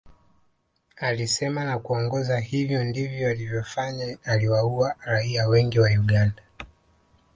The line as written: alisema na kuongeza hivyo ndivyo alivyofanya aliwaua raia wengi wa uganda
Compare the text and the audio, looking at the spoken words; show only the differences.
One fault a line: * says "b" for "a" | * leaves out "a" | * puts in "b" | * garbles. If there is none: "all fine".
all fine